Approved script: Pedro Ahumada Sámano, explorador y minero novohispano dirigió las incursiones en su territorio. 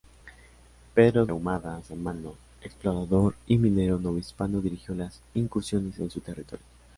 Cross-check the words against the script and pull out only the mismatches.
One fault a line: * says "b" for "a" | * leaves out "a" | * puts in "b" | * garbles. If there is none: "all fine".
all fine